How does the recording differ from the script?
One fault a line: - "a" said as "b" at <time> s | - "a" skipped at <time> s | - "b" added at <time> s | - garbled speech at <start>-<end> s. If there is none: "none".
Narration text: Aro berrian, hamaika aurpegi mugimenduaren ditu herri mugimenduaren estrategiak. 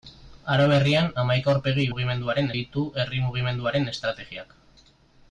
none